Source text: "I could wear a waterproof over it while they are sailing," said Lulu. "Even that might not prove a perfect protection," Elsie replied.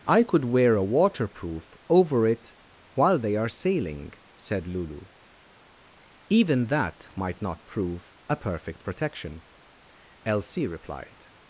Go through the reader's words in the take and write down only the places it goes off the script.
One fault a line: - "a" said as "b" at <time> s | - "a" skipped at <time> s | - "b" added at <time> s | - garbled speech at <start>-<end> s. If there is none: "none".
none